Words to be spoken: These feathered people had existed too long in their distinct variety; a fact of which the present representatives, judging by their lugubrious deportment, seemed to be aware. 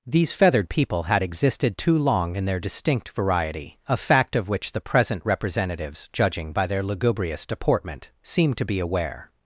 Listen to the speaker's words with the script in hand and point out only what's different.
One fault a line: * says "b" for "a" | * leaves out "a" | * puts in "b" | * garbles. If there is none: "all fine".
all fine